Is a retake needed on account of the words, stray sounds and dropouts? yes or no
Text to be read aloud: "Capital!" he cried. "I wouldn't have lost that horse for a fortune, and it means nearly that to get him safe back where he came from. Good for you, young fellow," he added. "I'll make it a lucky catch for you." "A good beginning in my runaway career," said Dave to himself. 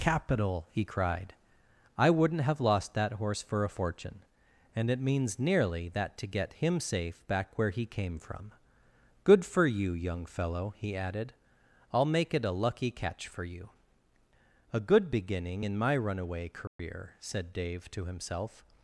yes